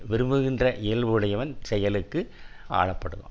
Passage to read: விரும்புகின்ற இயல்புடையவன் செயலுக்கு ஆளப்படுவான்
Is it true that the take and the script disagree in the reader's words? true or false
false